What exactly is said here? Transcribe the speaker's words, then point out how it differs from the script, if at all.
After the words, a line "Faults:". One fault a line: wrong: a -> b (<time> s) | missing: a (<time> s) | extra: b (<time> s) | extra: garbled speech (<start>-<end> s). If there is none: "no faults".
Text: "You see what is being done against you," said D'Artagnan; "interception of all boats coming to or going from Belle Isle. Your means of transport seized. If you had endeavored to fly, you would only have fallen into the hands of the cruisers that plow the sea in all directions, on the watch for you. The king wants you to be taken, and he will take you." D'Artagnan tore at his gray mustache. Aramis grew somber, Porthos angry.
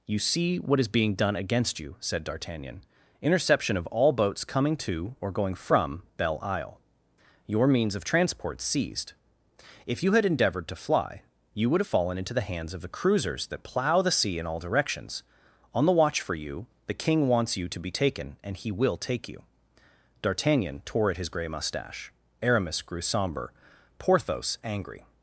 "You see what is being done against you," said D'Artagnan; "interception of all boats coming to or going from Belle Isle. Your means of transport seized. If you had endeavored to fly, you would have fallen into the hands of the cruisers that plow the sea in all directions, on the watch for you. The king wants you to be taken, and he will take you." D'Artagnan tore at his gray mustache. Aramis grew somber, Porthos angry.
Faults:
missing: only (11.8 s)